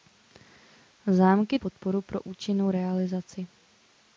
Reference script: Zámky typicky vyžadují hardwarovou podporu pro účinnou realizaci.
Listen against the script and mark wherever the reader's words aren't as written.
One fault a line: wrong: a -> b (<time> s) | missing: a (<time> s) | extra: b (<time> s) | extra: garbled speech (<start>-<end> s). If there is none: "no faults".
missing: typicky vyžadují hardwarovou (1.6 s)